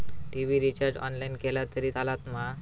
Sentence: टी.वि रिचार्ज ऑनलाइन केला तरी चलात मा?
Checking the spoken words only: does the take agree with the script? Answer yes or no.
yes